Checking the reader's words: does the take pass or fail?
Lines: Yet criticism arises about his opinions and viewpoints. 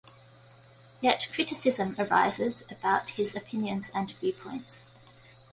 pass